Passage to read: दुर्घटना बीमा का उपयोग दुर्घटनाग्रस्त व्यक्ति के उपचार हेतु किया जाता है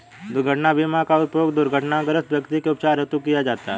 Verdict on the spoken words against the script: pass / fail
pass